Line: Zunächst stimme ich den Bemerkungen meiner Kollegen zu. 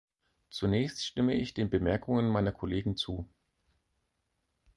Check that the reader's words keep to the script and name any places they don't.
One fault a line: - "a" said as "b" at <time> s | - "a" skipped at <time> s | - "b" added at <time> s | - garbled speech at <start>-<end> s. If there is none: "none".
none